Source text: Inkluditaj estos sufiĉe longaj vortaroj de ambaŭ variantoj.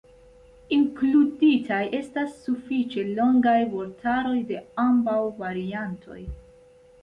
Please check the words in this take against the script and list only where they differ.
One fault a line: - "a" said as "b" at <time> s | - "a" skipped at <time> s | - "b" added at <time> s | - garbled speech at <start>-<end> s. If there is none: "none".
- "estos" said as "estas" at 2.0 s